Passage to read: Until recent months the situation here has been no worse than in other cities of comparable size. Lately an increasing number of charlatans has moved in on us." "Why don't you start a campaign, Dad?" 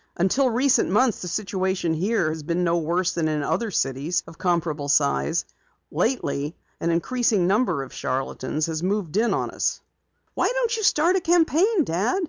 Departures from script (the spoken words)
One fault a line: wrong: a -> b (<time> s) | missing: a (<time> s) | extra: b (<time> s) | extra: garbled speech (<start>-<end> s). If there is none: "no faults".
no faults